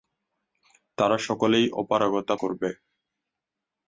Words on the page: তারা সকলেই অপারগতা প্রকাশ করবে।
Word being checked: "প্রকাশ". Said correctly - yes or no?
no